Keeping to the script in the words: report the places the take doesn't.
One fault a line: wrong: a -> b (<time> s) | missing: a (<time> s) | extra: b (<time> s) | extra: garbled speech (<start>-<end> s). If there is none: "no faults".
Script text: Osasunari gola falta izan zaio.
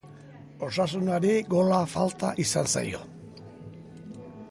no faults